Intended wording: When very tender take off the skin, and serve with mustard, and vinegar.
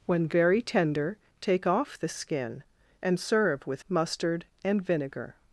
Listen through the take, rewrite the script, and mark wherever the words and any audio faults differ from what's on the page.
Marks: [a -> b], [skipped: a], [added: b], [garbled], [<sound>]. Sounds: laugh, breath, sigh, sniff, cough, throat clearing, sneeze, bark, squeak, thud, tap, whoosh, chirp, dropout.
When very tender take off the skin, and serve with mustard, and vinegar.